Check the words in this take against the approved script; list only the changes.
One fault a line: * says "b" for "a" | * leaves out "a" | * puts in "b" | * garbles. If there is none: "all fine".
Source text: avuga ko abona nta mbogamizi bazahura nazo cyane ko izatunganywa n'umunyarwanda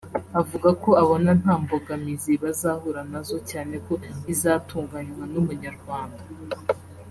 all fine